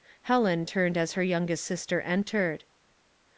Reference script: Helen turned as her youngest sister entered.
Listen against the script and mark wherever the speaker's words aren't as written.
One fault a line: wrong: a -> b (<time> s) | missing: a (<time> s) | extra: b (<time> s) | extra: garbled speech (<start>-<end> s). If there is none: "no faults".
no faults